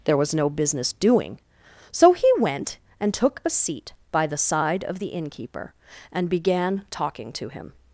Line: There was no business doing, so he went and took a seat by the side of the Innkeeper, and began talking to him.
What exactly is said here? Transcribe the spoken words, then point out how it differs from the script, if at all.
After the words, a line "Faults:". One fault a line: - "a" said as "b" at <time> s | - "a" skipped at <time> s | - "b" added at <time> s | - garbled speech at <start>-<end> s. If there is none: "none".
There was no business doing, so he went and took a seat by the side of the Innkeeper, and began talking to him.
Faults:
none